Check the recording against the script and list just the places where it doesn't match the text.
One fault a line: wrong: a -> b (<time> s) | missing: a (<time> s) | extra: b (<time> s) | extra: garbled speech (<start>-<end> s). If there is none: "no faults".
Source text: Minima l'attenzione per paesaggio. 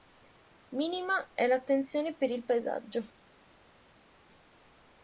extra: è (1.3 s)
extra: il (2.3 s)